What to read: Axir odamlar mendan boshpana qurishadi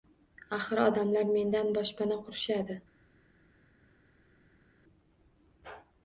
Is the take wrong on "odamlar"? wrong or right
right